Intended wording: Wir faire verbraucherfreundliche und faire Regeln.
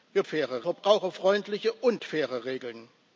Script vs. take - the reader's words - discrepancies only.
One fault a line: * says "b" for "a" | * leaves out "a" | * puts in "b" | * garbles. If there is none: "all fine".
all fine